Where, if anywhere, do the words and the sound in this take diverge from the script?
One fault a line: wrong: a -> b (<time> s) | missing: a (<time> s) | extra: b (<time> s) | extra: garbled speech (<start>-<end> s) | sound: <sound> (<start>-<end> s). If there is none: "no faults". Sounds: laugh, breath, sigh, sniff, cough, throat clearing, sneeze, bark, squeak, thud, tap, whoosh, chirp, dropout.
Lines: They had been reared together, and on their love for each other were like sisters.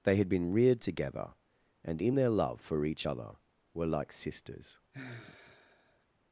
wrong: on -> in (2.0 s)
sound: sigh (4.9-6.1 s)